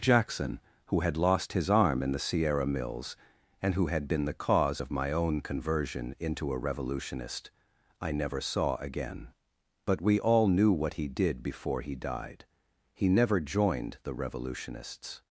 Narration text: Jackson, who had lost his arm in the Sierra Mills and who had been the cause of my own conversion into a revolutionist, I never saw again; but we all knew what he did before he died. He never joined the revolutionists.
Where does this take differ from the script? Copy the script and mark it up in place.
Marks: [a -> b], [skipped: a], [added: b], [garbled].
Jackson, who had lost his arm in the Sierra Mills and who had been the cause of my own conversion into a revolutionist, I never saw again; but we all knew what he did before he died. He never joined the revolutionists.